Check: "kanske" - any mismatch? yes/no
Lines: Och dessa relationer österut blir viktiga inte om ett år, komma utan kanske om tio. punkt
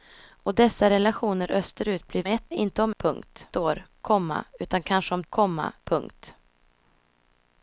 no